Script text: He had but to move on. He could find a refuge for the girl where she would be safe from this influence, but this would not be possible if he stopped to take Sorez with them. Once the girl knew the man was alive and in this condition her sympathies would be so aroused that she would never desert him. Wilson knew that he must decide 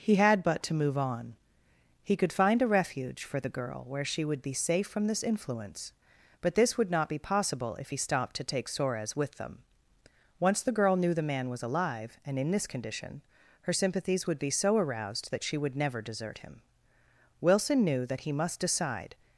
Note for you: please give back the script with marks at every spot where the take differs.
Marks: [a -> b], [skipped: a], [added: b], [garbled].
He had but to move on. He could find a refuge for the girl where she would be safe from this influence, but this would not be possible if he stopped to take Sorez with them. Once the girl knew the man was alive and in this condition her sympathies would be so aroused that she would never desert him. Wilson knew that he must decide